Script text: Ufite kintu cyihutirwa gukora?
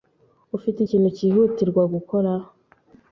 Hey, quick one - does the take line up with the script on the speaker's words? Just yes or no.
yes